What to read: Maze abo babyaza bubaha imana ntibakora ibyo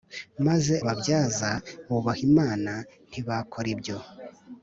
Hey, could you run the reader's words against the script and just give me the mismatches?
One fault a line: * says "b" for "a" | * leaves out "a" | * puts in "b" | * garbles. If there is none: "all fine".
* leaves out "abo"